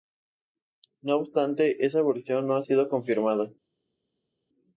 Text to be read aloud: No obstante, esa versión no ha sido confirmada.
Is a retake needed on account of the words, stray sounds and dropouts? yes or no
no